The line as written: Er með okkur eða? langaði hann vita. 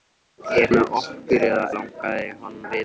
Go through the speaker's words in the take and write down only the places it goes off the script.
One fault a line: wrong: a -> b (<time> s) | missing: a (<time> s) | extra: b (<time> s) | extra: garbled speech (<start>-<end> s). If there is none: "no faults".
no faults